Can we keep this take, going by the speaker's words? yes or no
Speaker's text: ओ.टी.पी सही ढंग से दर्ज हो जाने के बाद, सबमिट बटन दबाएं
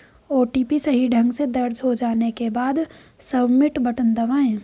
yes